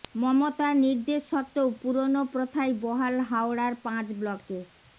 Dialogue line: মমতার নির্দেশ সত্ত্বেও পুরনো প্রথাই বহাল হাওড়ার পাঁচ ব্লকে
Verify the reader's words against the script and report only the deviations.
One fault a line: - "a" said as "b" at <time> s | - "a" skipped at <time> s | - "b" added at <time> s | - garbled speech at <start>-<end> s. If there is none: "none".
none